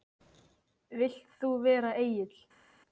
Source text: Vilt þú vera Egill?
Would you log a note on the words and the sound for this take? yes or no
no